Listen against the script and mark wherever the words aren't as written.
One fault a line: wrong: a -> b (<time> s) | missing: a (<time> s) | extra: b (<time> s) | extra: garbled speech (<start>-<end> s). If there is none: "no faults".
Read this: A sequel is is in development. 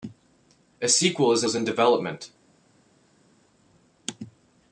no faults